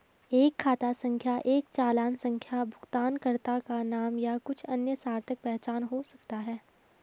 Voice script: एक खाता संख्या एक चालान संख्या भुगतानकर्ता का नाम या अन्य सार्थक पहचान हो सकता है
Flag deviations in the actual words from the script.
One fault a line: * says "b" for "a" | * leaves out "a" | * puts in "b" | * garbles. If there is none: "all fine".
* puts in "कुछ"